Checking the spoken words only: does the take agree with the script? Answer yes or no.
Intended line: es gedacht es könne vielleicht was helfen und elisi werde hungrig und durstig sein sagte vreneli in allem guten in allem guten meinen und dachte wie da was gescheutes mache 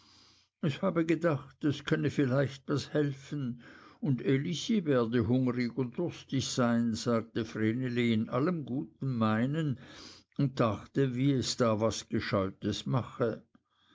no